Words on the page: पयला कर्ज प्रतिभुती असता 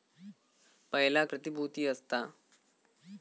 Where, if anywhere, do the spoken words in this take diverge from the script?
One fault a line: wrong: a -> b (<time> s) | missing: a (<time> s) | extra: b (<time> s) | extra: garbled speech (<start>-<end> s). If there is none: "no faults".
missing: कर्ज (1.2 s)